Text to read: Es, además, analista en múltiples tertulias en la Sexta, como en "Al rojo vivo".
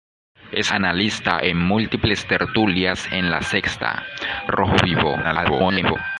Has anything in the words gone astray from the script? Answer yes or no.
yes